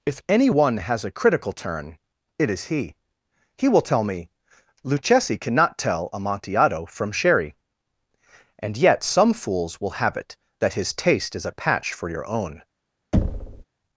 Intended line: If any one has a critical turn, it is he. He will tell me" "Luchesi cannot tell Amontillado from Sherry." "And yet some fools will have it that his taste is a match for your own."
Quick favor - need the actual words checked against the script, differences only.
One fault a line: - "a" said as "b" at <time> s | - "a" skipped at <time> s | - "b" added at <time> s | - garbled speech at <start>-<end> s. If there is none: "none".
- "match" said as "patch" at 11.5 s